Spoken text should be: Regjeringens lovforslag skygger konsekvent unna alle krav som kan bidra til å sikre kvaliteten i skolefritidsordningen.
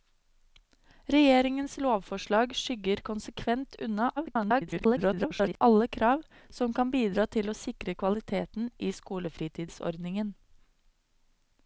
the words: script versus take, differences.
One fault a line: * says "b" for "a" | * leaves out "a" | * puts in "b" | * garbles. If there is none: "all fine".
* garbles